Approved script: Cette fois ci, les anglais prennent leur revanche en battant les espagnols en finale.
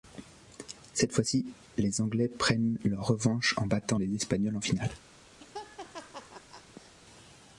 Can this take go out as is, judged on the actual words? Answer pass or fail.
pass